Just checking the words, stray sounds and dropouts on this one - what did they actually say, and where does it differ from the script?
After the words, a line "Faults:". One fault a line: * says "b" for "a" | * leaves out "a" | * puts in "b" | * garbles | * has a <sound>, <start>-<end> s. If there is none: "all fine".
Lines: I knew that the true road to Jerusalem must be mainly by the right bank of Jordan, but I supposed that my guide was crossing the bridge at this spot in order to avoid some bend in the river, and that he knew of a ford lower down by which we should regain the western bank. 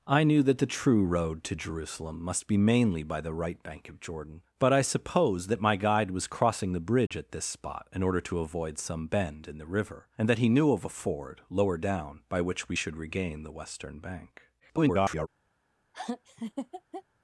I knew that the true road to Jerusalem must be mainly by the right bank of Jordan, but I supposed that my guide was crossing the bridge at this spot in order to avoid some bend in the river, and that he knew of a ford lower down by which we should regain the western bank. [garbled]
Faults:
* has a dropout, 7.1-7.1 s
* garbles
* has a laugh, 15.9-17.0 s